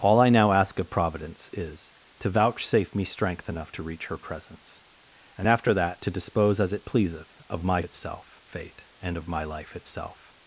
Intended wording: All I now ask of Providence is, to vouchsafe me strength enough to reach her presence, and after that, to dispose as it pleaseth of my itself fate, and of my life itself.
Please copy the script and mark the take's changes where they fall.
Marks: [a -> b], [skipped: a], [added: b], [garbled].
All I now ask of Providence is, to vouchsafe me strength enough to reach her presence, and after that, to dispose as it pleaseth of my itself fate, and of my life itself.